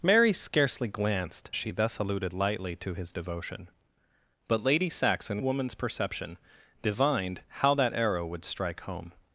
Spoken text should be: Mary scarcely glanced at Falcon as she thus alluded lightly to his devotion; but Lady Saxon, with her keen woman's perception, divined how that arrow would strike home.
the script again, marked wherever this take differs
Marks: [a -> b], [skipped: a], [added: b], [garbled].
Mary scarcely glanced [skipped: at Falcon as] she thus alluded lightly to his devotion; but Lady Saxon, [skipped: with her keen] woman's perception, divined how that arrow would strike home.